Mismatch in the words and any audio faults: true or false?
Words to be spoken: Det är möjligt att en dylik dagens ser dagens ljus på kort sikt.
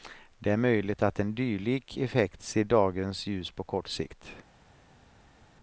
true